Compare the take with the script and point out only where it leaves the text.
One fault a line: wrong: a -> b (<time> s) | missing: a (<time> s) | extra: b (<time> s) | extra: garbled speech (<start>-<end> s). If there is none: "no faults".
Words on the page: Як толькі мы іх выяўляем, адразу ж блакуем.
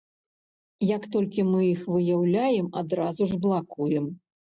no faults